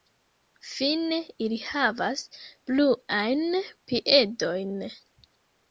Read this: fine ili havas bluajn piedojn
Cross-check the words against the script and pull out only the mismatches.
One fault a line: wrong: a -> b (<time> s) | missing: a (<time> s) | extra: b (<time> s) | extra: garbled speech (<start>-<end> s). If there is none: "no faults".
no faults